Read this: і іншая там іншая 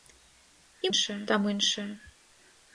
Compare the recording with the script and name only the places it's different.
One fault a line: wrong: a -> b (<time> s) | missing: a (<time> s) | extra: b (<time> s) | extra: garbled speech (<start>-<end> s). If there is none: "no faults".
no faults